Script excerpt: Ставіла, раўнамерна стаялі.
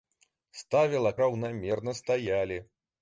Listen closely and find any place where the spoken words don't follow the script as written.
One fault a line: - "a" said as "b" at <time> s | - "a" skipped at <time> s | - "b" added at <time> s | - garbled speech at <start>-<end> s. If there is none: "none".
none